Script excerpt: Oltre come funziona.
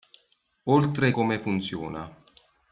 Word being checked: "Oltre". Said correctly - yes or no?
yes